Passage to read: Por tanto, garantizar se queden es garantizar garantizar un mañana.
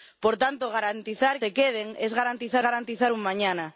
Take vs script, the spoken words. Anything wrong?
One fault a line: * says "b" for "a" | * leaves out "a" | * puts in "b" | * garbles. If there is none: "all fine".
all fine